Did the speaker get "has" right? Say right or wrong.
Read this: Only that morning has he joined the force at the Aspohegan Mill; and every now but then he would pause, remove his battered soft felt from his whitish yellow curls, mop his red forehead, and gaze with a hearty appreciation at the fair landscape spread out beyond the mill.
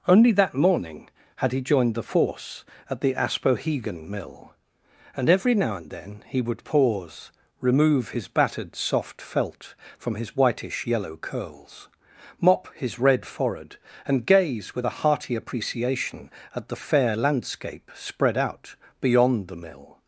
wrong